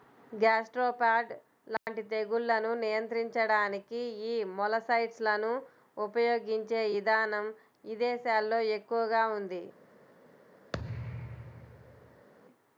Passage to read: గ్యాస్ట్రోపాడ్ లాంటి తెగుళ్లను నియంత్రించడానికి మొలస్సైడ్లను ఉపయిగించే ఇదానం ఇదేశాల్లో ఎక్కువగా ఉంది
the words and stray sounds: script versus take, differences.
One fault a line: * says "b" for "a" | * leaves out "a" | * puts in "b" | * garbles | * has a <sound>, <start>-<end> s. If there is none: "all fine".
* has a dropout, 1.8-1.9 s
* puts in "యీ"
* has a thud, 10.7-12.3 s